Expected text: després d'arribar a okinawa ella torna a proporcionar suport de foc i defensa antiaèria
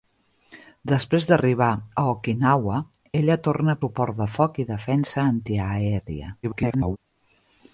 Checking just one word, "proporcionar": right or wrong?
wrong